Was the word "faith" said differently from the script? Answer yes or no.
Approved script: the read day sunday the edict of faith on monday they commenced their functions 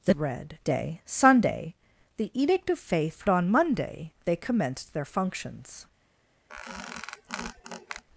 no